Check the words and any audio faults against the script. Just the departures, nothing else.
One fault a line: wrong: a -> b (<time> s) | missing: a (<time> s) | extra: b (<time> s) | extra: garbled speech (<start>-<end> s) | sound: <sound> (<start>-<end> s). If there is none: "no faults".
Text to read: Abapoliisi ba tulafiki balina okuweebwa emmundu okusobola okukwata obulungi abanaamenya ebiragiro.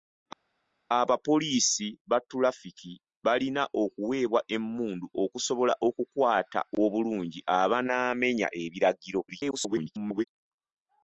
extra: garbled speech (9.3-10.2 s)